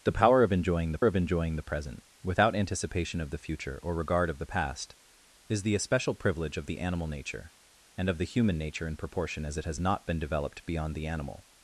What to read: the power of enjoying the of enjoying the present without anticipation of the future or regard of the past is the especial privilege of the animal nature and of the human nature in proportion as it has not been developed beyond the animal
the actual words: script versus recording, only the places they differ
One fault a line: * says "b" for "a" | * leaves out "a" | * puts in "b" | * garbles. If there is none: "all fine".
all fine